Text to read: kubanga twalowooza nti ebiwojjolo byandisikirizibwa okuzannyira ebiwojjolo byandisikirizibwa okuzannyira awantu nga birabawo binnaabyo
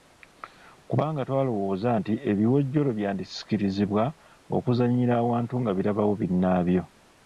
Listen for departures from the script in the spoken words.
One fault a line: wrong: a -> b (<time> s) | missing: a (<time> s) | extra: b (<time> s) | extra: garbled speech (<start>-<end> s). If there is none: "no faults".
missing: ebiwojjolo byandisikirizibwa okuzannyira (5.1 s)